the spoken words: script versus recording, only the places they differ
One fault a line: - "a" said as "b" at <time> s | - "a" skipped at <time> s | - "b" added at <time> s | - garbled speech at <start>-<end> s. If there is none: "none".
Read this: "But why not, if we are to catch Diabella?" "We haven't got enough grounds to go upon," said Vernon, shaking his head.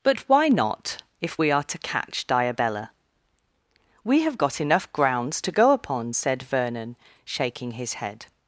- "haven't" said as "have" at 4.2 s